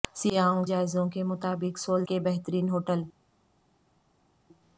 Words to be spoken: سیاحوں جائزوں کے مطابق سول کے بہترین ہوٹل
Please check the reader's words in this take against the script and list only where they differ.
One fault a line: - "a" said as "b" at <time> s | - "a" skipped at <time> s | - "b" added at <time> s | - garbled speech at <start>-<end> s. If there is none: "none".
none